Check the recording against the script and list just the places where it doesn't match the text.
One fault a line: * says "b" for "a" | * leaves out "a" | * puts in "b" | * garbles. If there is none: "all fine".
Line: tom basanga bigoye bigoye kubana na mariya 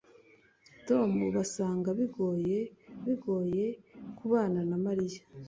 all fine